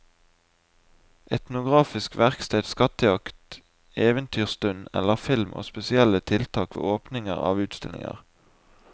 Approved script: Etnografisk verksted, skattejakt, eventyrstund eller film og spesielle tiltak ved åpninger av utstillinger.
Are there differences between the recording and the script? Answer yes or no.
no